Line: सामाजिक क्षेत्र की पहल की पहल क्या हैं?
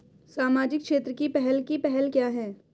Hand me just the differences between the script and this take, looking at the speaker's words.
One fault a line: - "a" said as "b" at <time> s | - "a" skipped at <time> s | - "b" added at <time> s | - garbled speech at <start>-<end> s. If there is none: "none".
none